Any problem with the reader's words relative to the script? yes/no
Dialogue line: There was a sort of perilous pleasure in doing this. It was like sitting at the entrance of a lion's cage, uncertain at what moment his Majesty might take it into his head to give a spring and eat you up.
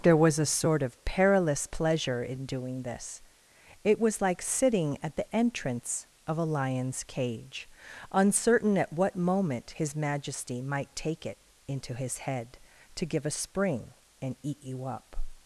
no